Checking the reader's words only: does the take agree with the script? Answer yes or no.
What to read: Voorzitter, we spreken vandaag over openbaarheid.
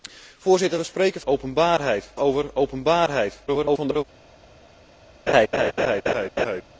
no